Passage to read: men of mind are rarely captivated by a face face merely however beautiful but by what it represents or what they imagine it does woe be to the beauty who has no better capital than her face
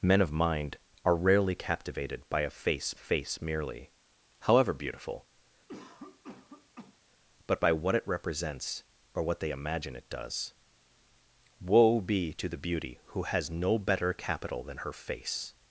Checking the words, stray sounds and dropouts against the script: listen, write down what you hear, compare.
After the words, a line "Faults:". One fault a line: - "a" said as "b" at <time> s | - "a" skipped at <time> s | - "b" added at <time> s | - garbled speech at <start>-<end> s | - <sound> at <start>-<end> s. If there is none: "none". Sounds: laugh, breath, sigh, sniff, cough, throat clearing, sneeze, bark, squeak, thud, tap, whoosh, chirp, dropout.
men of mind are rarely captivated by a face face merely however beautiful but by what it represents or what they imagine it does woe be to the beauty who has no better capital than her face
Faults:
- cough at 5.7-7.0 s